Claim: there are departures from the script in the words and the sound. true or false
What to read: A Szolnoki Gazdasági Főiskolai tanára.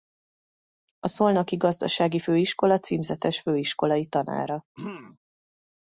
true